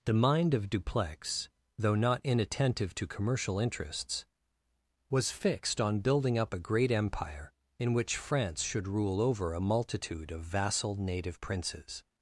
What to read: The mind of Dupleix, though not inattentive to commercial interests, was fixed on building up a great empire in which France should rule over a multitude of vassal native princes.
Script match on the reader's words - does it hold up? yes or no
yes